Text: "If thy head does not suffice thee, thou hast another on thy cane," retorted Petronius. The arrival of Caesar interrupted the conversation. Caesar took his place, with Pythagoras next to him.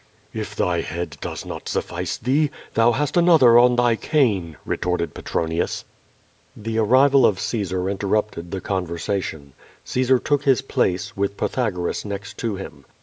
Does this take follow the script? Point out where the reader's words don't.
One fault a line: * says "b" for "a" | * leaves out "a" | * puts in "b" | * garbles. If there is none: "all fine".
all fine